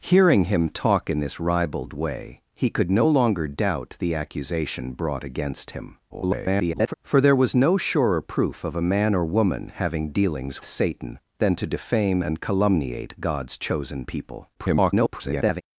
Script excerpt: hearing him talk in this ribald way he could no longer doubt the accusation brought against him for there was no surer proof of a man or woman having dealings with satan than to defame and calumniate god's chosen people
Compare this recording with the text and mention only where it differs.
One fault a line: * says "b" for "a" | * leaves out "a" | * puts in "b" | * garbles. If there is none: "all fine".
* garbles
* leaves out "with"
* garbles